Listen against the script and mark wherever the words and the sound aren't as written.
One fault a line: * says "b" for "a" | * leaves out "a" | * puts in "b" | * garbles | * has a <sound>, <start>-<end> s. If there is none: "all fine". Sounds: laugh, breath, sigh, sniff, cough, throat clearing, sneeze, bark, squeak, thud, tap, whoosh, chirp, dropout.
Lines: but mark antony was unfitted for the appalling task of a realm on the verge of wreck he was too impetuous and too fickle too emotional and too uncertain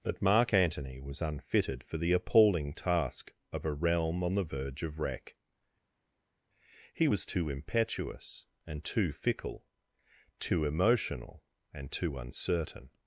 all fine